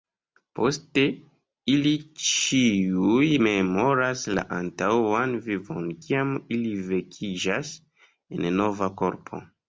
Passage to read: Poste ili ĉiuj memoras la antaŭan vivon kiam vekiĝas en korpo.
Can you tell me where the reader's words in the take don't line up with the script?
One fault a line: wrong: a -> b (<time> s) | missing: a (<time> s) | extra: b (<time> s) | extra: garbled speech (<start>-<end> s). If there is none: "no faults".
extra: ili (6.6 s)
extra: nova (8.6 s)